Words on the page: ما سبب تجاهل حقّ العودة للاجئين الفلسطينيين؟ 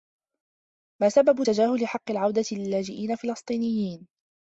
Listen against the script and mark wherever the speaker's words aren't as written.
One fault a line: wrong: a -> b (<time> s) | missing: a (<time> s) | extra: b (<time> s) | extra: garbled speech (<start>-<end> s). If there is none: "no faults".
no faults